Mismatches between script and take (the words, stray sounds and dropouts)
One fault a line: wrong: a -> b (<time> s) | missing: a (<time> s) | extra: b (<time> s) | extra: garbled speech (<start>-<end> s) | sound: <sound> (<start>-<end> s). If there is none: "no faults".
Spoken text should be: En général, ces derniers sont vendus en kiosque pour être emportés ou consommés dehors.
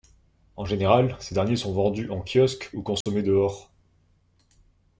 missing: pour être emportés (2.7 s)
sound: dropout (3.0-3.1 s)